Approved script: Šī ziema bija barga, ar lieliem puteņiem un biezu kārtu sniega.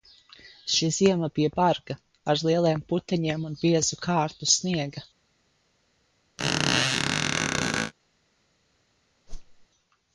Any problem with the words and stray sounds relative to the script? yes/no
yes